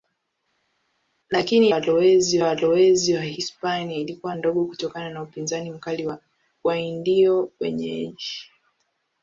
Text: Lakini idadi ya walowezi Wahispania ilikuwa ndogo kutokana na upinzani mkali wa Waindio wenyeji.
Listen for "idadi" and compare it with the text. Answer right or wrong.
wrong